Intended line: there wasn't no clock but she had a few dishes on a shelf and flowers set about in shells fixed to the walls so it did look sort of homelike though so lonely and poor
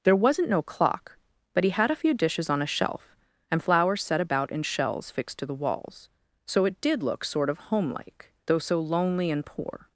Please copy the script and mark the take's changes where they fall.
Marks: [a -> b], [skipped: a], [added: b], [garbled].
there wasn't no clock but [she -> he] had a few dishes on a shelf and flowers set about in shells fixed to the walls so it did look sort of homelike though so lonely and poor